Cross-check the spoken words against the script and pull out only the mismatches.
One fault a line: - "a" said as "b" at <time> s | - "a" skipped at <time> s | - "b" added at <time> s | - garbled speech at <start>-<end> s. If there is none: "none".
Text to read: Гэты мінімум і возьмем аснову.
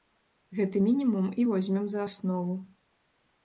- "за" added at 1.9 s